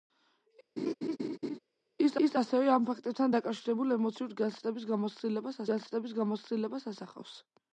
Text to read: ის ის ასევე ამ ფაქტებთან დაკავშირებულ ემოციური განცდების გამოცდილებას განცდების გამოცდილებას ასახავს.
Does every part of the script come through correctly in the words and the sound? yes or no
no